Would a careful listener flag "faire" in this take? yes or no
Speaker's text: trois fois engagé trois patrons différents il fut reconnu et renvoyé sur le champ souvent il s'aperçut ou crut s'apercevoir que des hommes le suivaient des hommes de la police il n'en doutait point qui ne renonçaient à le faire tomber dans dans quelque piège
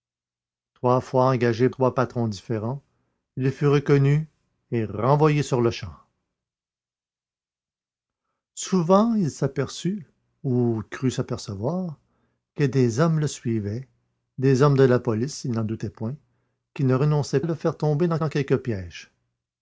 no